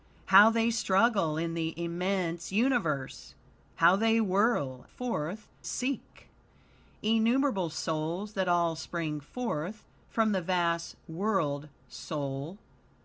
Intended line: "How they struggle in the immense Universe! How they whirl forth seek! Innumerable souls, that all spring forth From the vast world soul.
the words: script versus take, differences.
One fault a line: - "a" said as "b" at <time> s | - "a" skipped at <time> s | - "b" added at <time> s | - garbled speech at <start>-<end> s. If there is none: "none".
none